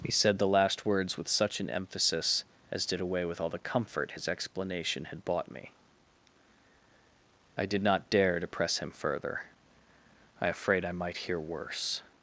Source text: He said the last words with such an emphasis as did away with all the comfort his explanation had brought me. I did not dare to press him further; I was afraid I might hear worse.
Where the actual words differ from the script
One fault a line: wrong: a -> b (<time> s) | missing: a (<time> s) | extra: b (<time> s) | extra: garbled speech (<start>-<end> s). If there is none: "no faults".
wrong: brought -> bought (5.2 s)
missing: was (10.5 s)